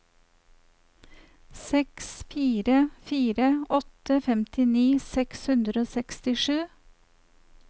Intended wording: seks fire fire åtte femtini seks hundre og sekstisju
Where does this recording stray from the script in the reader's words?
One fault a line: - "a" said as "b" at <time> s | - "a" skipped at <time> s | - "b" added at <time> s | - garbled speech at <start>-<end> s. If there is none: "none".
none